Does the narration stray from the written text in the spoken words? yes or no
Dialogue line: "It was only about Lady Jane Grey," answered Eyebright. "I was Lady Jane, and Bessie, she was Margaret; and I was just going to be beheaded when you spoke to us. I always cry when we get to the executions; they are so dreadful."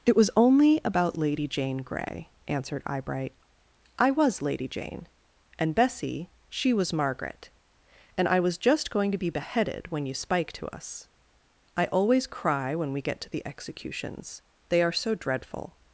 yes